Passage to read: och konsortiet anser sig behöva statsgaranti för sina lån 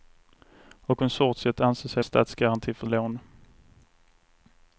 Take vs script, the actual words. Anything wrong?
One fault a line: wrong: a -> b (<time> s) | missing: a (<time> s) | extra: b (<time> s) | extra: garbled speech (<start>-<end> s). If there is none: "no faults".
missing: behöva (2.0 s)
missing: sina (2.9 s)